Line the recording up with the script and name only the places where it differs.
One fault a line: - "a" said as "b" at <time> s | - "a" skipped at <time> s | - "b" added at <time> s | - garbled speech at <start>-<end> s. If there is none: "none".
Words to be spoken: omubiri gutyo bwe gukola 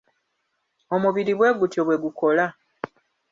- "bwe" added at 1.4 s